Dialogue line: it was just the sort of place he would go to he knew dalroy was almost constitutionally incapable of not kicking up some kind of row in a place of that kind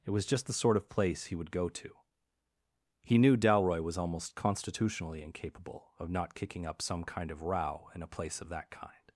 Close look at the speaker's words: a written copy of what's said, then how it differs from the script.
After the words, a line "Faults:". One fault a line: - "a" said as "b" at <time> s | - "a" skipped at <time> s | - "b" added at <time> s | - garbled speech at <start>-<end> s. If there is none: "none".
it was just the sort of place he would go to he knew dalroy was almost constitutionally incapable of not kicking up some kind of row in a place of that kind
Faults:
none